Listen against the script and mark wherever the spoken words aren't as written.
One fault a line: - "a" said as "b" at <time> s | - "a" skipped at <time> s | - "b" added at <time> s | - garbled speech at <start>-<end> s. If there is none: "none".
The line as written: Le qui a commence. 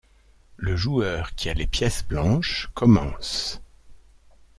- "joueur" added at 0.8 s
- "les pièces blanches" added at 1.5 s